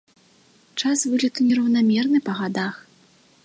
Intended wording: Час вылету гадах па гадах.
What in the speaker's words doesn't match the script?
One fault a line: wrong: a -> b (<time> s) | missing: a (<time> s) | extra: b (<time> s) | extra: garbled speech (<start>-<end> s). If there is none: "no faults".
wrong: гадах -> нераўнамерны (1.5 s)